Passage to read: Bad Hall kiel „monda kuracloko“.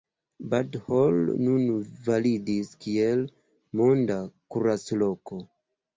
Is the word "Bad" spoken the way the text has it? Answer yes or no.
yes